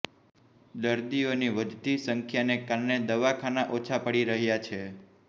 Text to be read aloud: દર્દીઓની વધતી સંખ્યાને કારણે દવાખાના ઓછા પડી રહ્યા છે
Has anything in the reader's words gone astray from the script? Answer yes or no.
no